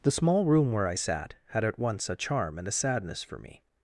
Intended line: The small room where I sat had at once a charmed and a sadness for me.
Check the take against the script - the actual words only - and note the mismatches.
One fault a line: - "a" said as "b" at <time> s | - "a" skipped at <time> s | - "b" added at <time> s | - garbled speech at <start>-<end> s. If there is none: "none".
- "charmed" said as "charm" at 2.2 s